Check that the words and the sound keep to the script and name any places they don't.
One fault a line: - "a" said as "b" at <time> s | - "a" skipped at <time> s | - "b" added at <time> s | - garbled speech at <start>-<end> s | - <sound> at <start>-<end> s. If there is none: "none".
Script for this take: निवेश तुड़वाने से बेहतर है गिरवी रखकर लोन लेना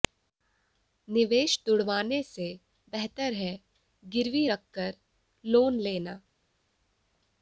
none